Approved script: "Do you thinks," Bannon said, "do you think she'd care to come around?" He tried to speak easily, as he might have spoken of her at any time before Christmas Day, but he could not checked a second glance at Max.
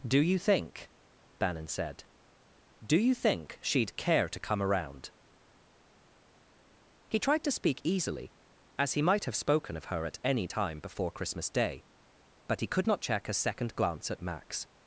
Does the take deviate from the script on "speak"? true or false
false